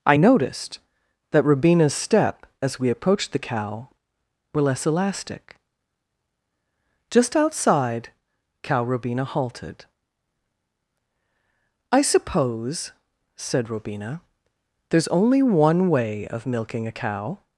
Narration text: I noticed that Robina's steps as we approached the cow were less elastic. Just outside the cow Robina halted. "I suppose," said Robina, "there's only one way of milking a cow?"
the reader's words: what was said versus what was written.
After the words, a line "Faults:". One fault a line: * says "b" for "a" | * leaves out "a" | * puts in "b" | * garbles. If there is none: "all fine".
I noticed that Robina's step as we approached the cow were less elastic. Just outside cow Robina halted. "I suppose," said Robina, "there's only one way of milking a cow?"
Faults:
* says "step" for "steps"
* leaves out "the"